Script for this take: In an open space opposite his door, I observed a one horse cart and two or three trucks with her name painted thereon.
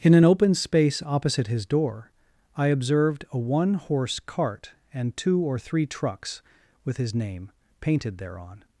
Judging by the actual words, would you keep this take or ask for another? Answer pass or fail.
fail